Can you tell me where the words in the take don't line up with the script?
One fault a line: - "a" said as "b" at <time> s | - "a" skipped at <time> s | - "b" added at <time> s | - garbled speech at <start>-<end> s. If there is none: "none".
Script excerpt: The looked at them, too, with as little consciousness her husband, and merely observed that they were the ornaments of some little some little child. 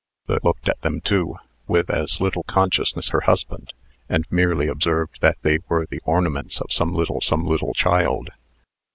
none